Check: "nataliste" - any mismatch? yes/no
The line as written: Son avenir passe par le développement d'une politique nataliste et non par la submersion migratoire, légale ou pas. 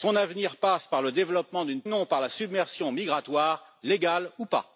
yes